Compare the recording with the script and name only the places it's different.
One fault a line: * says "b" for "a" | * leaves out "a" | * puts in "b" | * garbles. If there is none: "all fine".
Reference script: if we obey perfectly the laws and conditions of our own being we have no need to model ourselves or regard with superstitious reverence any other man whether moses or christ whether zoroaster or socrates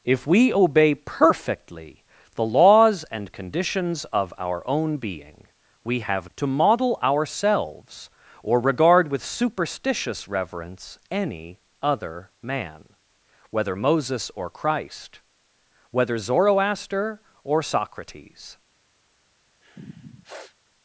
* leaves out "no need"